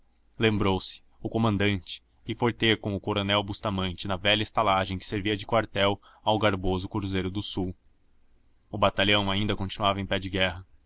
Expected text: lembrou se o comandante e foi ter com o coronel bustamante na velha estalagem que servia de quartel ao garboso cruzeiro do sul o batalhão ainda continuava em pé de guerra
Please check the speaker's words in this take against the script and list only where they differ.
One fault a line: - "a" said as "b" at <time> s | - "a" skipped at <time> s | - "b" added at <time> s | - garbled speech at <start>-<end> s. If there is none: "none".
none